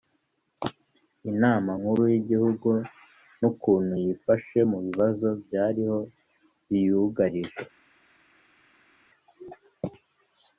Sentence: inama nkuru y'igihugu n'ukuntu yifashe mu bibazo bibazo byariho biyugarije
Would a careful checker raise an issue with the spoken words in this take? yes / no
yes